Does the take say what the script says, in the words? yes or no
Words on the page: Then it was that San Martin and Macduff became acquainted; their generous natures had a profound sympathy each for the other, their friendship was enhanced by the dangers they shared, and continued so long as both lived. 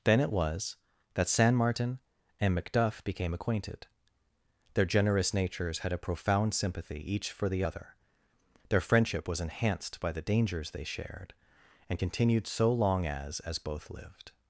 no